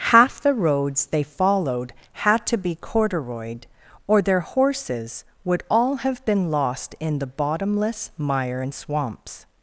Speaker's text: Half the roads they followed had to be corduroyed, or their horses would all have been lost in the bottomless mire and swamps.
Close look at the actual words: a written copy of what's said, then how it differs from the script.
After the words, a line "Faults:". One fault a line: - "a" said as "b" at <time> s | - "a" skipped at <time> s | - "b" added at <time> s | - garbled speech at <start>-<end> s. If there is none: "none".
Half the roads they followed had to be corduroyed, or their horses would all have been lost in the bottomless mire and swamps.
Faults:
none